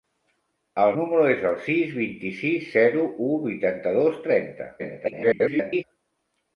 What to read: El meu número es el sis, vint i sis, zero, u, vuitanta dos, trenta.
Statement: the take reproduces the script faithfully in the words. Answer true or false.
false